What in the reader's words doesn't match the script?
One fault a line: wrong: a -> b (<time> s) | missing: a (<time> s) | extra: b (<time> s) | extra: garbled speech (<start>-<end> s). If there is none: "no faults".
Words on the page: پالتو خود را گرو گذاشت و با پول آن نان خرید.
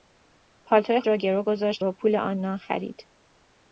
missing: خود (1.0 s)
missing: و (1.8 s)